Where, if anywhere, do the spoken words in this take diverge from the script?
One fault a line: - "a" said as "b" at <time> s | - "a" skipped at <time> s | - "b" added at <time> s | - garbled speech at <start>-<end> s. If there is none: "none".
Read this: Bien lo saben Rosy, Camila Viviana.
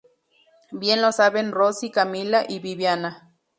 - "y" added at 2.5 s